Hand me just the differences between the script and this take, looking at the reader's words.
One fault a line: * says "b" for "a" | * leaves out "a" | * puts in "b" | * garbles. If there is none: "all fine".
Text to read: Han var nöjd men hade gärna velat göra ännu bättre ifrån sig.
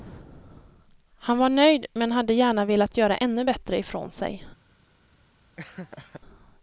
all fine